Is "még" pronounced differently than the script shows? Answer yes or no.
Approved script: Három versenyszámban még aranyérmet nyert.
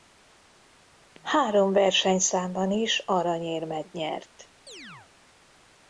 yes